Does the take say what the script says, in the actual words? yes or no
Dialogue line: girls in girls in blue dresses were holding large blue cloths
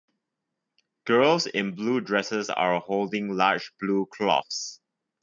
no